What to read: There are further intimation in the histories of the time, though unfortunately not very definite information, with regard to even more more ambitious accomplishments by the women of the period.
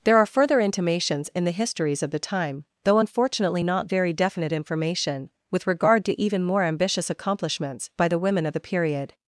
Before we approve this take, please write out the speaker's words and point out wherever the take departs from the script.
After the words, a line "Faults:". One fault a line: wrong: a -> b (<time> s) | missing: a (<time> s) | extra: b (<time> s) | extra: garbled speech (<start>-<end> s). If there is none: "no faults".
There are further intimations in the histories of the time, though unfortunately not very definite information, with regard to even more ambitious accomplishments by the women of the period.
Faults:
wrong: intimation -> intimations (0.6 s)
missing: more (6.6 s)